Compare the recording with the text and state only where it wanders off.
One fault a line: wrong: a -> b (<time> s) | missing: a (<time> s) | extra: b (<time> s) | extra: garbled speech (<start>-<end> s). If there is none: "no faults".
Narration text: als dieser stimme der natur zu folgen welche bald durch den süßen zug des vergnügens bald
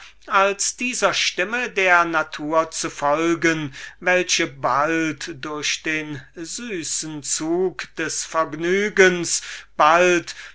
no faults